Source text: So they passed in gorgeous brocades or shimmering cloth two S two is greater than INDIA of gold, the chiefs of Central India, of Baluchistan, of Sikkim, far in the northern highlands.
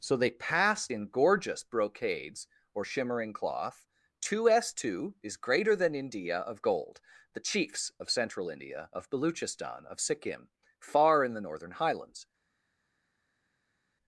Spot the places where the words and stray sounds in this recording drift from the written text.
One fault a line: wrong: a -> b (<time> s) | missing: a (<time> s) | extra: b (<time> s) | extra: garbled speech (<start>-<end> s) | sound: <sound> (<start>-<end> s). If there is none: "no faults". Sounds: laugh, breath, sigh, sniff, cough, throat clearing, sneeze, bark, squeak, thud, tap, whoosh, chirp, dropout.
no faults